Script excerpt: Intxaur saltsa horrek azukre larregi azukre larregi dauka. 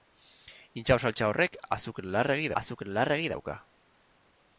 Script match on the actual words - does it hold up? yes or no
yes